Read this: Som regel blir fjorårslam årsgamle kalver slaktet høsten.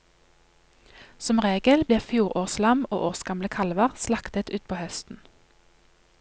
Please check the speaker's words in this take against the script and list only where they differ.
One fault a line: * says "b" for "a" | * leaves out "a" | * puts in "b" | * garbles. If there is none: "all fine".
* puts in "og"
* puts in "utpå"